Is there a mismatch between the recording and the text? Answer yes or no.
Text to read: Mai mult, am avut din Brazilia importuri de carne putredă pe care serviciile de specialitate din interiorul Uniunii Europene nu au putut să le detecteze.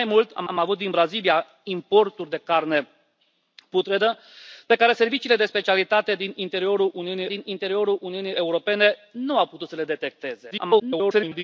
yes